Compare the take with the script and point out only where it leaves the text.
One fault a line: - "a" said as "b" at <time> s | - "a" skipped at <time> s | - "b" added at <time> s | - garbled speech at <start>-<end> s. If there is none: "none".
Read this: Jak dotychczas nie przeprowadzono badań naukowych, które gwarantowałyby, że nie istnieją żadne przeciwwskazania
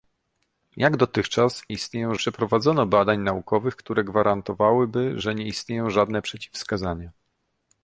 - "nie" said as "istnieją" at 1.7 s